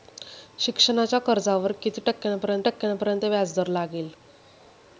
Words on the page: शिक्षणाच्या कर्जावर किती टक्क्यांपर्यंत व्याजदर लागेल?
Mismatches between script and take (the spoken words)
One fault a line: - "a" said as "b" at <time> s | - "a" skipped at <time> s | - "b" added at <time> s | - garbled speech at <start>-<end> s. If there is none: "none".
- "टक्क्यांपर्यंत" added at 2.6 s